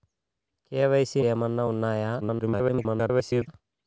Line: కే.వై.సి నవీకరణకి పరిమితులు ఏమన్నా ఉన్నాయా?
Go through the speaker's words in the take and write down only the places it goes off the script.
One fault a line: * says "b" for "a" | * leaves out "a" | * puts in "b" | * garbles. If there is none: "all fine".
* leaves out "నవీకరణకి పరిమితులు"
* garbles